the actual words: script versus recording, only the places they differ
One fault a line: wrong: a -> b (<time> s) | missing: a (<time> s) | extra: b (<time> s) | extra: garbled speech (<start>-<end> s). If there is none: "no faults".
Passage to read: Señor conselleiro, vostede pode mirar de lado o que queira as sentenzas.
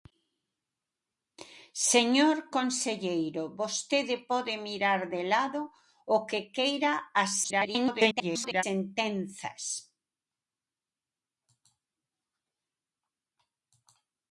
extra: garbled speech (7.4-8.6 s)